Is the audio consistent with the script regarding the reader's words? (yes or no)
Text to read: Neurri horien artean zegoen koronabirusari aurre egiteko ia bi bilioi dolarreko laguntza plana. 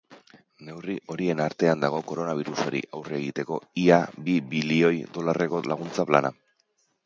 no